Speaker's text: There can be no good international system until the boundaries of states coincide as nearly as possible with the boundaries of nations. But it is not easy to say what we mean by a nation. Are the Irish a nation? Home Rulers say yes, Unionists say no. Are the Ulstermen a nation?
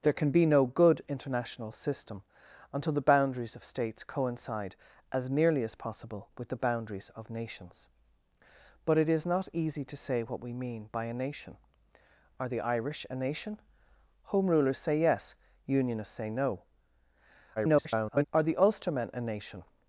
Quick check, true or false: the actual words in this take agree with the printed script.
false